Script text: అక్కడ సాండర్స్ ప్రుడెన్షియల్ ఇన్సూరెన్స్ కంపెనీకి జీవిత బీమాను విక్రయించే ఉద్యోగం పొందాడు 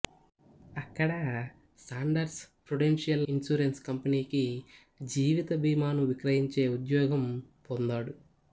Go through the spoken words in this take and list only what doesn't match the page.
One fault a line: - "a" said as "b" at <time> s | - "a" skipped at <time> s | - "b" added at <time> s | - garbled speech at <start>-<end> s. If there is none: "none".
none